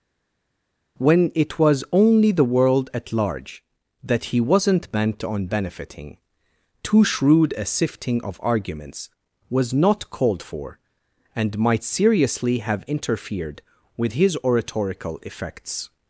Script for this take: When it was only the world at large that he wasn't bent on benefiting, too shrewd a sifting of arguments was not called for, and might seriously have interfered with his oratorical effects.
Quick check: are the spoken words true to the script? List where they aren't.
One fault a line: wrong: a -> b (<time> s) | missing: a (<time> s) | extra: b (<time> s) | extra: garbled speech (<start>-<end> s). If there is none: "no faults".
no faults